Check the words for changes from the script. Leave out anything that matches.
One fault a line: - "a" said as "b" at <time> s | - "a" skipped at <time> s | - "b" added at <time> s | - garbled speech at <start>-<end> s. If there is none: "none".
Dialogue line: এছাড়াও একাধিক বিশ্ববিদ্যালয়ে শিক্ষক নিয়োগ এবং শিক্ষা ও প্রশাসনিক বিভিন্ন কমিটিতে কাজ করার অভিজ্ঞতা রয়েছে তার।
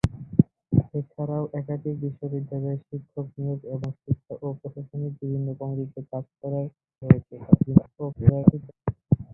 - "অভিজ্ঞতা" skipped at 6.7 s
- garbled speech at 7.7-8.7 s